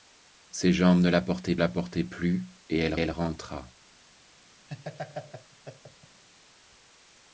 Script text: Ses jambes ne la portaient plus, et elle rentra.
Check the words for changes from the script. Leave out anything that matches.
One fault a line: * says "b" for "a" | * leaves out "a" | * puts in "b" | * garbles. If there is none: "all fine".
* puts in "la portaient"
* puts in "elle"